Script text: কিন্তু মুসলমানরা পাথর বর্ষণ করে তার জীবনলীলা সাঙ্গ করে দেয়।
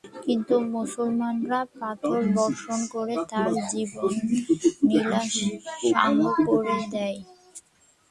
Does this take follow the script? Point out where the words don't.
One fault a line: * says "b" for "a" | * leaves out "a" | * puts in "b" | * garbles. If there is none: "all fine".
all fine